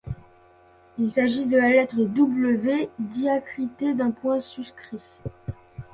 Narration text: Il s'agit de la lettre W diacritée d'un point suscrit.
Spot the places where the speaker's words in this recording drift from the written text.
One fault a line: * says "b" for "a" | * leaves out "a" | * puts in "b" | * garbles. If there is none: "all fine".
all fine